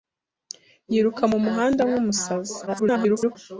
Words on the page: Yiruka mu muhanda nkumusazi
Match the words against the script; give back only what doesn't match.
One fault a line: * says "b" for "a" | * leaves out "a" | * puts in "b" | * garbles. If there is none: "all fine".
* garbles